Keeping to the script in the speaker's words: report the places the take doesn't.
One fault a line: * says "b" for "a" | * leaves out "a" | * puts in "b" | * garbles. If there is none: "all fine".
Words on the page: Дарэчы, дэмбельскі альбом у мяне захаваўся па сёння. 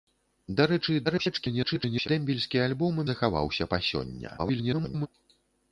* garbles
* leaves out "мяне"
* garbles